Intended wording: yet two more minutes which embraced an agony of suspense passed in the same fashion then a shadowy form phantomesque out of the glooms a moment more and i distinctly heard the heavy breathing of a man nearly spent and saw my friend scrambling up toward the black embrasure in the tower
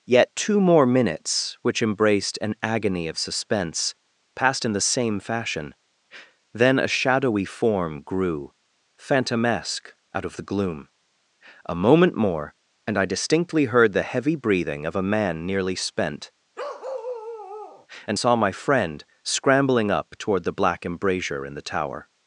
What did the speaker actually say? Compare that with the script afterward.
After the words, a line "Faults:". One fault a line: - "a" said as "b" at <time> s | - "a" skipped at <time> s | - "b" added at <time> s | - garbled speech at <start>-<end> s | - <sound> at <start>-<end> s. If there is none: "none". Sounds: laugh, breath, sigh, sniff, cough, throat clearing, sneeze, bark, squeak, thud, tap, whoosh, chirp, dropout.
yet two more minutes which embraced an agony of suspense passed in the same fashion then a shadowy form grew phantomesque out of the gloom a moment more and i distinctly heard the heavy breathing of a man nearly spent and saw my friend scrambling up toward the black embrasure in the tower
Faults:
- "grew" added at 8.0 s
- "glooms" said as "gloom" at 10.5 s
- bark at 16.6-17.9 s